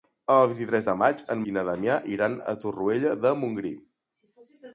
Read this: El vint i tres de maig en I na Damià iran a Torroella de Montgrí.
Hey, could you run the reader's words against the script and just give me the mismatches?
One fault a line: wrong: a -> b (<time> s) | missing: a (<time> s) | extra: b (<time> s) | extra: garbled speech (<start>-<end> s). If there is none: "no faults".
no faults